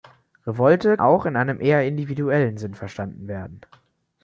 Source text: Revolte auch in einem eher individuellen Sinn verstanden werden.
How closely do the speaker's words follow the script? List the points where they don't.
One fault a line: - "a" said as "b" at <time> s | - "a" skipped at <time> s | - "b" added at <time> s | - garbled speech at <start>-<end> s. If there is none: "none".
none